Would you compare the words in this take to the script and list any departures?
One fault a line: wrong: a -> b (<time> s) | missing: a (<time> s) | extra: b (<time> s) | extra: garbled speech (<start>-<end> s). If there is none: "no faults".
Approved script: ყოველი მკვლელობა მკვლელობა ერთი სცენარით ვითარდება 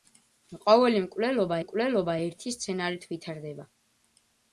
no faults